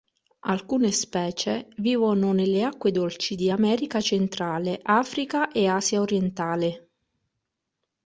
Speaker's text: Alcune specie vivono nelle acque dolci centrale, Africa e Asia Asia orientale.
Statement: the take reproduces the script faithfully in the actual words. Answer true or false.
false